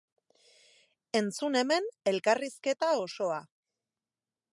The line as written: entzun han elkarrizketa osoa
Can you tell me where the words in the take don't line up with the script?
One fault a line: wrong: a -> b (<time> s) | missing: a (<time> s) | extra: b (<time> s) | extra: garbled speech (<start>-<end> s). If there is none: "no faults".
wrong: han -> hemen (1.6 s)